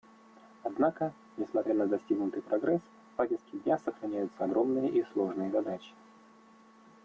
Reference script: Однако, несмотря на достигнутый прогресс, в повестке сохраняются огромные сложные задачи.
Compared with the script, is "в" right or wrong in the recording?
right